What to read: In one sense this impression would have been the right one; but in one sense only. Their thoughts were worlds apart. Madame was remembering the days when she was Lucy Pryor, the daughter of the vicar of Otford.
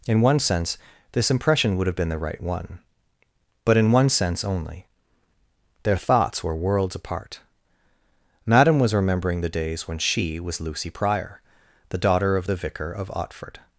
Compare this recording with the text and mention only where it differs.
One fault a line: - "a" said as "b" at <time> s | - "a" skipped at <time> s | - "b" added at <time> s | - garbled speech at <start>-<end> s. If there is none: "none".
none